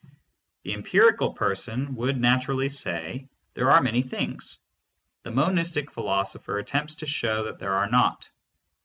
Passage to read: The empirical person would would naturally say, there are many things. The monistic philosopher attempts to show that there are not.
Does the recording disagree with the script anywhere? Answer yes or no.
yes